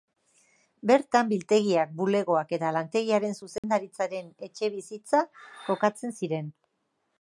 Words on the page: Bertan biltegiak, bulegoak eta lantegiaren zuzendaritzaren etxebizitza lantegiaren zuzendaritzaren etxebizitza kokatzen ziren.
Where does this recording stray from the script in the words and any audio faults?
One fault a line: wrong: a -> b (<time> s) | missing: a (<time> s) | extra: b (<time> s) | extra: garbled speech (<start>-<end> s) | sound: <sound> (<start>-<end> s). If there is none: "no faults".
sound: dropout (3.6-3.6 s)
missing: lantegiaren zuzendaritzaren etxebizitza (5.3 s)